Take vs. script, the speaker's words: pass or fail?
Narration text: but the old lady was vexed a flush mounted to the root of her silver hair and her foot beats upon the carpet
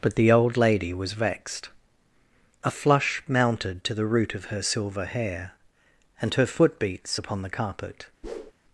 pass